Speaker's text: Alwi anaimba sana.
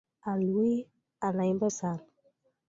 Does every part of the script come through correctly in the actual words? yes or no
yes